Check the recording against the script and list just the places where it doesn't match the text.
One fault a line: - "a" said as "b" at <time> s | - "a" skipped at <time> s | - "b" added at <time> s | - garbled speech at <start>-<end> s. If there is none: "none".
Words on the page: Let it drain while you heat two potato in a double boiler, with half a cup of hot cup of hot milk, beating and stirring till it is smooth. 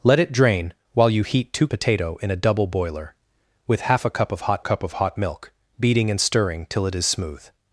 none